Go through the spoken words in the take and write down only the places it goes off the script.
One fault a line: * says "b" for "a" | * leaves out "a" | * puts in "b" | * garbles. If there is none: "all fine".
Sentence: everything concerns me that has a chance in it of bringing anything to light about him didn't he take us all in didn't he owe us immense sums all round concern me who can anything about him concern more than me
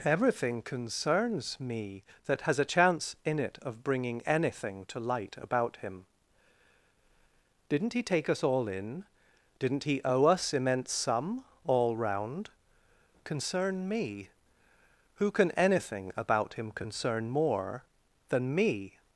* says "sum" for "sums"